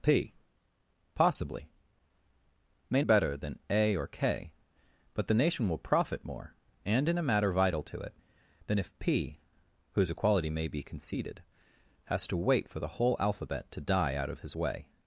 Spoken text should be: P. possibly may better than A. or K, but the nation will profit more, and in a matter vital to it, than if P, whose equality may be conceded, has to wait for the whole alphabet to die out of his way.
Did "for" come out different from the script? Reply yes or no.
no